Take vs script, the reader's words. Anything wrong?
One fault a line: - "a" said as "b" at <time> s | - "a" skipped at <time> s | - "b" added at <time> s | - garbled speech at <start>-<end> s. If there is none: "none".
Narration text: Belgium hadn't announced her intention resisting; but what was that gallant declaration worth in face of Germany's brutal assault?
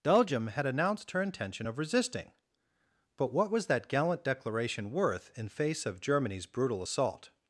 - "hadn't" said as "had" at 0.5 s
- "of" added at 1.7 s